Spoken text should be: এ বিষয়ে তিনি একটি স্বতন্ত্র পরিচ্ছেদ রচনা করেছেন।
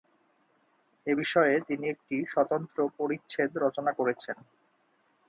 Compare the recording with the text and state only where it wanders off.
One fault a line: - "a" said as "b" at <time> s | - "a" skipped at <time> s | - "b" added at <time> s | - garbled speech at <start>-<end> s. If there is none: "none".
none